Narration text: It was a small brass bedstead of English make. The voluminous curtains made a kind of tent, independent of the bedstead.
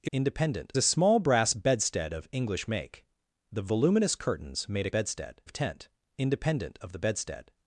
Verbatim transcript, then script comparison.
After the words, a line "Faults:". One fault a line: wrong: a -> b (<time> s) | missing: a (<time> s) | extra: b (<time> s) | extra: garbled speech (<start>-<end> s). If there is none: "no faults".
It independent a small brass bedstead of English make. The voluminous curtains made a bedstead of tent, independent of the bedstead.
Faults:
wrong: was -> independent (0.1 s)
wrong: kind -> bedstead (4.9 s)